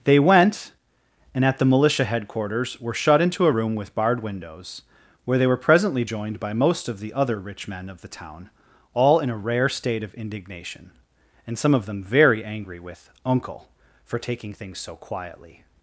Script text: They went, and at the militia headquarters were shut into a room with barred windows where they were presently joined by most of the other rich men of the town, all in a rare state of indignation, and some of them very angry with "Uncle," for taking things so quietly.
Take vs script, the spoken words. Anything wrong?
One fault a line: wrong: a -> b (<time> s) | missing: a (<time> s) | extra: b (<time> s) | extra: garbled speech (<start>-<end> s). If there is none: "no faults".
no faults